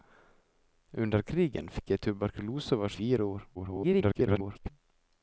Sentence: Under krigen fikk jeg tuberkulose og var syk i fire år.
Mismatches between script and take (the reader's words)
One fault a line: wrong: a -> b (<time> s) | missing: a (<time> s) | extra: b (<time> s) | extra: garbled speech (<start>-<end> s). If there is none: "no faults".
missing: syk (3.0 s)
extra: garbled speech (3.5-4.7 s)